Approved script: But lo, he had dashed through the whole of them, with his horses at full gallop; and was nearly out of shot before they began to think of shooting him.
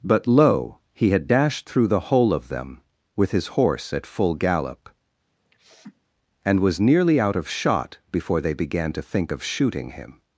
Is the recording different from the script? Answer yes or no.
yes